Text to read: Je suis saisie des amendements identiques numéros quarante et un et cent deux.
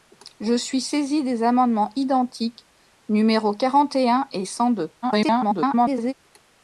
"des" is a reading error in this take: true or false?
false